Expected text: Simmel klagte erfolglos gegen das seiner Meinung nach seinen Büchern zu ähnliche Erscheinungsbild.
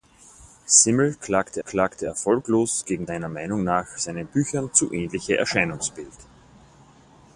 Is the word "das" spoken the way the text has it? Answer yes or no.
no